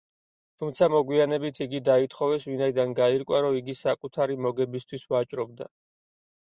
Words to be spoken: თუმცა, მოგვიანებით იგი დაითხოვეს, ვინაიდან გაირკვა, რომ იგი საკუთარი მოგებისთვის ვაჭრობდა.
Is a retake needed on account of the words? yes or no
no